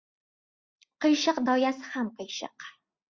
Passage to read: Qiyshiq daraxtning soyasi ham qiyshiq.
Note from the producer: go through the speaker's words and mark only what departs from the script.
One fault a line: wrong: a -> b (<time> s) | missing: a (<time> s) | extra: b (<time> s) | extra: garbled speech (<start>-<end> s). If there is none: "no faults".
missing: daraxtning (1.4 s)